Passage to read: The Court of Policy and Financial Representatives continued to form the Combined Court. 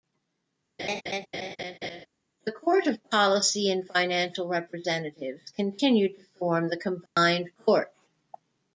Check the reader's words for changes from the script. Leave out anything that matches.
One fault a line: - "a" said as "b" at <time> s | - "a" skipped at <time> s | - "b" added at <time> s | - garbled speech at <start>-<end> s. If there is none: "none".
none